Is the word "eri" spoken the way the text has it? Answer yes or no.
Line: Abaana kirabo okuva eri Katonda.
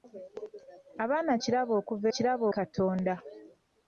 no